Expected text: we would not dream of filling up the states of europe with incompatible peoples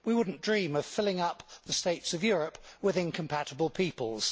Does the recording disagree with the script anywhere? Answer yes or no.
no